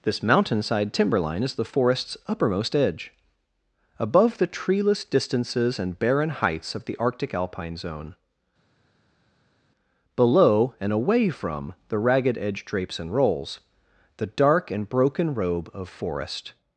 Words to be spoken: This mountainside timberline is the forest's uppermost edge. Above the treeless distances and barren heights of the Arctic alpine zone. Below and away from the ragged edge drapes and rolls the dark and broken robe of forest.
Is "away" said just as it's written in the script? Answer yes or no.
yes